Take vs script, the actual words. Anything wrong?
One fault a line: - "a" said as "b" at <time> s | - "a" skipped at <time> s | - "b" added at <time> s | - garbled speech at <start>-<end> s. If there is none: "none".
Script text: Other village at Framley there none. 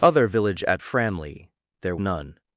none